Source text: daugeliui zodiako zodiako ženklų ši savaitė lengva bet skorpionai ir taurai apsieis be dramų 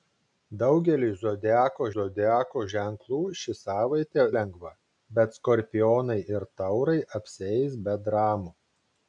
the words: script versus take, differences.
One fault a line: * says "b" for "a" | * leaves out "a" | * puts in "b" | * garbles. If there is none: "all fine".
all fine